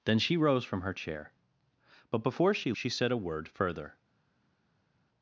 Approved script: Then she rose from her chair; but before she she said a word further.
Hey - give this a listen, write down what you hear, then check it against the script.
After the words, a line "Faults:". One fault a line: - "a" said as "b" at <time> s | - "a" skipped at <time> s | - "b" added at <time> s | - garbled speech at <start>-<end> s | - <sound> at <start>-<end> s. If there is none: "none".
Then she rose from her chair; but before she she said a word further.
Faults:
none